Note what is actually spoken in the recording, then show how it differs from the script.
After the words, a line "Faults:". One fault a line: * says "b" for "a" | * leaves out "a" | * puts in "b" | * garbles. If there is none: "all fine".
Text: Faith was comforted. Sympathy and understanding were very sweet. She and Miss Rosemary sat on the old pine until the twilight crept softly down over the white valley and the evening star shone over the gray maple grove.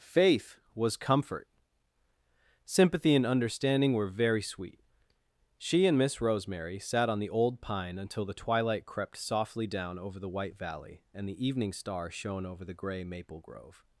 Faith was comfort. Sympathy and understanding were very sweet. She and Miss Rosemary sat on the old pine until the twilight crept softly down over the white valley and the evening star shone over the gray maple grove.
Faults:
* says "comfort" for "comforted"